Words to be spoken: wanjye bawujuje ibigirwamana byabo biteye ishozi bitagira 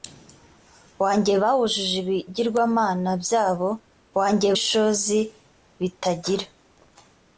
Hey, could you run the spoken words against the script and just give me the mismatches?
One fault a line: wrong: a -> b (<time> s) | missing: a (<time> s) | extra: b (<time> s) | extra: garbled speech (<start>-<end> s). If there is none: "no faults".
wrong: biteye -> wanjye (4.2 s)